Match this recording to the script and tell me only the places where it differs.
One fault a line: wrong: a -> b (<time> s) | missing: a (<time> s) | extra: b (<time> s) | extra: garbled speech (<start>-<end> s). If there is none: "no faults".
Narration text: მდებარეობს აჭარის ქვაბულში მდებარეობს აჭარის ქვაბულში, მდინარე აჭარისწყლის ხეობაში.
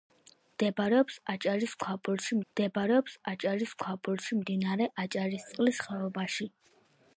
no faults